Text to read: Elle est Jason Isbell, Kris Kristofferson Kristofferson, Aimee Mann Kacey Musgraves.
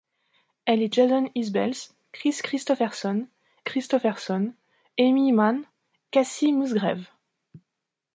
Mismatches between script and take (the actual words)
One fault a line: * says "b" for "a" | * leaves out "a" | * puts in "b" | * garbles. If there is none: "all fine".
all fine